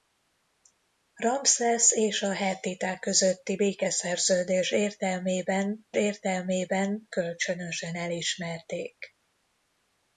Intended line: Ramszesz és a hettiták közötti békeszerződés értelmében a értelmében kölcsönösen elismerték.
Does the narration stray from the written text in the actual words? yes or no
no